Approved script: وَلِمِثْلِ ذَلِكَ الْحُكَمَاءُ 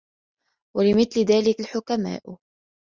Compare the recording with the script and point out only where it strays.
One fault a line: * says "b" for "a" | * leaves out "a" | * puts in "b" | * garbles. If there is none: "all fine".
all fine